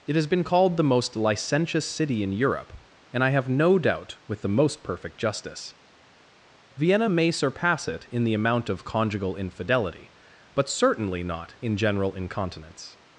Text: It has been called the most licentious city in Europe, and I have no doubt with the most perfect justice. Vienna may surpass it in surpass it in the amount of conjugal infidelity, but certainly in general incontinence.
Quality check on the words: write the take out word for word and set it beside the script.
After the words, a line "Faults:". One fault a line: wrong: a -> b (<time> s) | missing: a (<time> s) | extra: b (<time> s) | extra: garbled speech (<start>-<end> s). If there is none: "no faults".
It has been called the most licentious city in Europe, and I have no doubt with the most perfect justice. Vienna may surpass it in the amount of conjugal infidelity, but certainly not in general incontinence.
Faults:
missing: surpass it in (8.2 s)
extra: not (11.2 s)